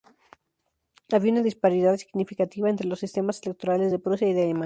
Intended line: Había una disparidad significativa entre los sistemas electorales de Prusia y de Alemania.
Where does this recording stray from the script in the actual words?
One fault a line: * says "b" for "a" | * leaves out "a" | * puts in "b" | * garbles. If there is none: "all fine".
all fine